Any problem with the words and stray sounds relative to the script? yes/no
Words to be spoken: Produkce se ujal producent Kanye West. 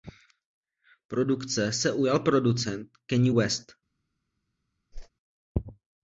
yes